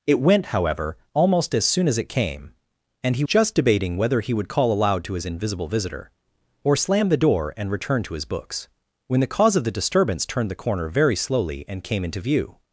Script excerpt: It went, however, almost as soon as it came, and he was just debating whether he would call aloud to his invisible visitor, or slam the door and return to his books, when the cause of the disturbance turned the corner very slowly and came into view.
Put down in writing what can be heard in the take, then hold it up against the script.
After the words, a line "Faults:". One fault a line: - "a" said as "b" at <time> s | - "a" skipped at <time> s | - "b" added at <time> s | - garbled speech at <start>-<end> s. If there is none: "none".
It went, however, almost as soon as it came, and he just debating whether he would call aloud to his invisible visitor, or slam the door and return to his books, when the cause of the disturbance turned the corner very slowly and came into view.
Faults:
- "was" skipped at 3.2 s